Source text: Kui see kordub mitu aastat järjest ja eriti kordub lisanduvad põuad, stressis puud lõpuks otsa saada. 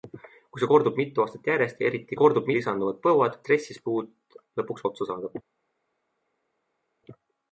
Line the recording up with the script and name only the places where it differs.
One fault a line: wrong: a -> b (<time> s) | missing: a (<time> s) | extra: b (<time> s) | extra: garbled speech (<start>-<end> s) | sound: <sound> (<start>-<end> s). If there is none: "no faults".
no faults